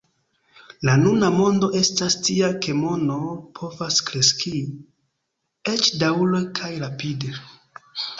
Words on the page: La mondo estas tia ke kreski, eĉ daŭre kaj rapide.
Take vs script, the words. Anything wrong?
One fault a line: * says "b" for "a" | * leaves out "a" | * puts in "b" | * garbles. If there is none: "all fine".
* puts in "nuna"
* puts in "mono povas"